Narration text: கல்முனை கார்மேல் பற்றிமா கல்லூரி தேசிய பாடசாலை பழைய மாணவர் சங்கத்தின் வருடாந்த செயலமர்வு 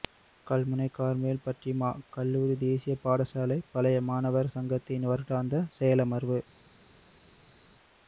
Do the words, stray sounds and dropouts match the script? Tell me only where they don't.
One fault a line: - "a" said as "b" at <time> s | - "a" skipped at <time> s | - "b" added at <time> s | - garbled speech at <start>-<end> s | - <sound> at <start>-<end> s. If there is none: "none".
none